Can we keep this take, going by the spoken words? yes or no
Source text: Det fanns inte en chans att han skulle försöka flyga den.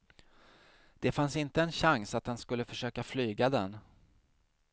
yes